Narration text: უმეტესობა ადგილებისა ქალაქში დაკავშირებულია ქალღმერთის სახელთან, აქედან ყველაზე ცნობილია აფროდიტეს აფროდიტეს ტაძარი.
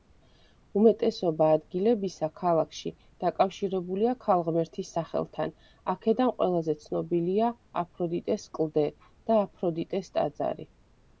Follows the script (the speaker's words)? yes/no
no